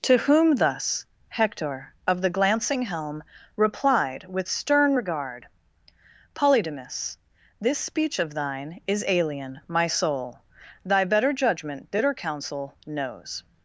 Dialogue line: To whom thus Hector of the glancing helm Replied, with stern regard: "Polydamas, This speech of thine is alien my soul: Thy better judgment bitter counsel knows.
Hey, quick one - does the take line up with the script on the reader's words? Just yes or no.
yes